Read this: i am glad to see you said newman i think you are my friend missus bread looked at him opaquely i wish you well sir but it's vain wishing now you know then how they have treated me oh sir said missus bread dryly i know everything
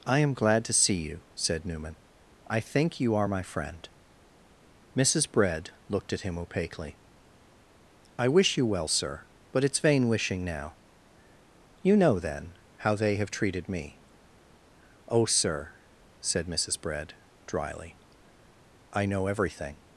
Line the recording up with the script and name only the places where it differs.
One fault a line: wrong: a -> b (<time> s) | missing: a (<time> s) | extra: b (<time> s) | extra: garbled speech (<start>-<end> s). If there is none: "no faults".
no faults